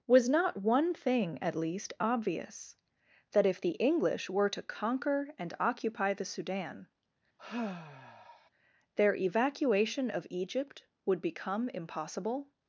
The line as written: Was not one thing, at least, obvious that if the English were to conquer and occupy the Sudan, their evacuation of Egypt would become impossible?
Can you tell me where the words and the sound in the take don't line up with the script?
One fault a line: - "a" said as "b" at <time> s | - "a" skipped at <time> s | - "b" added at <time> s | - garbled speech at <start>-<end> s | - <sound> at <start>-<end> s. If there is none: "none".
- sigh at 7.4-8.5 s